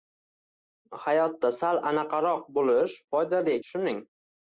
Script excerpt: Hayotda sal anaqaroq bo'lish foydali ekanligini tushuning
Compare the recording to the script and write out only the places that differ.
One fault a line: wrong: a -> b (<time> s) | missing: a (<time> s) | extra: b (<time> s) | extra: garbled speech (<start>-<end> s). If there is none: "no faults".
missing: ekanligini (3.6 s)